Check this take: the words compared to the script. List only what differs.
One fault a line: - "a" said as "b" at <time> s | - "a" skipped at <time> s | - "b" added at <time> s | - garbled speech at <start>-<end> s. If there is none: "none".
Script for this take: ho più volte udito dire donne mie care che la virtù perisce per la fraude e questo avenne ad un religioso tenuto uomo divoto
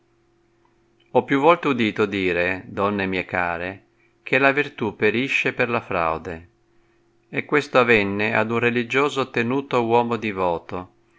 none